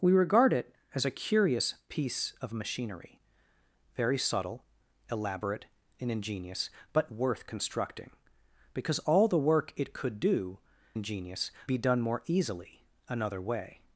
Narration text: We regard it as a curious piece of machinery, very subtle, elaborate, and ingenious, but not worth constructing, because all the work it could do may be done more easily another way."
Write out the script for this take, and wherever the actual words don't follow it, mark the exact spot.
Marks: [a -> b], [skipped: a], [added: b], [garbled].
We regard it as a curious piece of machinery, very subtle, elaborate, and ingenious, but [skipped: not] worth constructing, because all the work it could do [may -> ingenious] be done more easily another way."